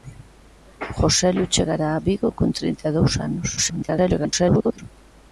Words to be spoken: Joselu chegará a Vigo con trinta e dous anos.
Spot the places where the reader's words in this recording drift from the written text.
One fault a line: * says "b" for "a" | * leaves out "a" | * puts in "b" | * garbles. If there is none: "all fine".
* garbles